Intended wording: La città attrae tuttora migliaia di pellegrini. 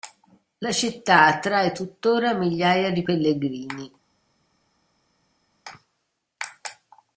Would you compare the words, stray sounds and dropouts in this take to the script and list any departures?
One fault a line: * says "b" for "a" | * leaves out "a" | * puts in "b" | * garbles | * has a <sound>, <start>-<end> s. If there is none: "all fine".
all fine